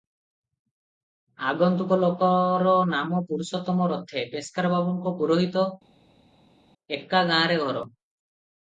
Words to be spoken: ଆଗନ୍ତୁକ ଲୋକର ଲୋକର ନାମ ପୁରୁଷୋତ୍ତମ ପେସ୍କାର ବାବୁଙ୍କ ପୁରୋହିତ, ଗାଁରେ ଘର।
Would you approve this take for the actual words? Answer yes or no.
no